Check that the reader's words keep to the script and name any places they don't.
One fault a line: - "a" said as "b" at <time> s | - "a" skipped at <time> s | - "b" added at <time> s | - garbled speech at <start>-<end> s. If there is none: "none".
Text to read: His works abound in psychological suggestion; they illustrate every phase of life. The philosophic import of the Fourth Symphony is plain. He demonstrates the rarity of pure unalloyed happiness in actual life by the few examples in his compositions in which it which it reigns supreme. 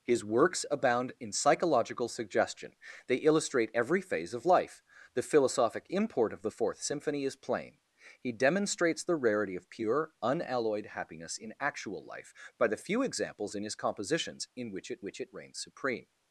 none